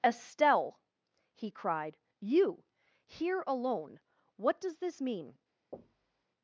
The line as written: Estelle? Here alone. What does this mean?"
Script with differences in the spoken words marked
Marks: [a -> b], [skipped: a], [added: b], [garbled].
Estelle? [added: he cried you] Here alone. What does this mean?"